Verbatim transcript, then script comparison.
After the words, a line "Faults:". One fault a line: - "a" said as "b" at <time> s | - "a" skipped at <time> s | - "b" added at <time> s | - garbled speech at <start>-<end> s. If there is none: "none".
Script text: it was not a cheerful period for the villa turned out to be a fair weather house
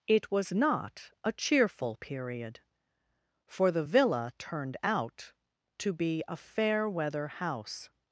it was not a cheerful period for the villa turned out to be a fair weather house
Faults:
none